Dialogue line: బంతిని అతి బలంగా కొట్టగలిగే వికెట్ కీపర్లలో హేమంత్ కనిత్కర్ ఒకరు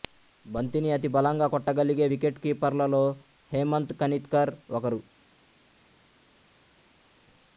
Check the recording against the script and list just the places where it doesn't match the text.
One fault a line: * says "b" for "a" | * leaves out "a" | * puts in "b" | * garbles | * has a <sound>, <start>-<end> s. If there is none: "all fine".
all fine